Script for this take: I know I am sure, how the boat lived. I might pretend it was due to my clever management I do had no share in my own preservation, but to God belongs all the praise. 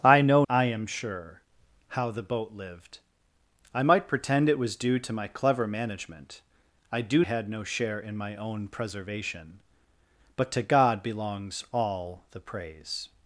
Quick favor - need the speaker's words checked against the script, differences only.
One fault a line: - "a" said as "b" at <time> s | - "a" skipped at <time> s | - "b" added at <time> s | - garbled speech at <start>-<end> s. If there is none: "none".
none